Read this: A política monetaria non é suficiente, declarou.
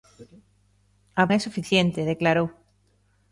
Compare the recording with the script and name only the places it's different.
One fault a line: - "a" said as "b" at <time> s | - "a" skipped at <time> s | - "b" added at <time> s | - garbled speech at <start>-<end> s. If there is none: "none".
- "política monetaria non" skipped at 1.2 s